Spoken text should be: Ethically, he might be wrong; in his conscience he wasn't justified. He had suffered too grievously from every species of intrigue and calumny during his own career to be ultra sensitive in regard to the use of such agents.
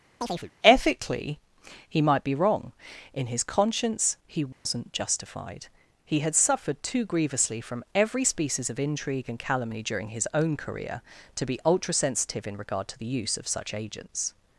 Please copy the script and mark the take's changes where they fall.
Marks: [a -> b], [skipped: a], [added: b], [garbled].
Ethically, he might be wrong; in his conscience he wasn't justified. He had suffered too grievously from every species of intrigue and calumny during his own career to be ultra sensitive in regard to the use of such agents.